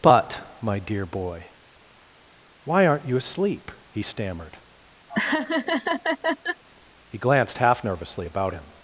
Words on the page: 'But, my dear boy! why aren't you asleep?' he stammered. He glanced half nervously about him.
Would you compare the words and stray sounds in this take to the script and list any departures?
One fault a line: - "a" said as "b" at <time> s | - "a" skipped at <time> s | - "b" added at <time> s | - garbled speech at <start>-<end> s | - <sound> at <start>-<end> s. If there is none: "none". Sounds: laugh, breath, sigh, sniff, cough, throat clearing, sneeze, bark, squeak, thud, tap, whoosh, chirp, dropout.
- laugh at 5.1-6.6 s